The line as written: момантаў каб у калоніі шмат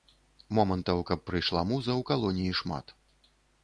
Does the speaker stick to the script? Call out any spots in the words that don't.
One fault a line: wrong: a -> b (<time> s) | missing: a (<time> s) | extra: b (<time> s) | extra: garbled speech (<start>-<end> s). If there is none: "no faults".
extra: прыйшла муза (1.3 s)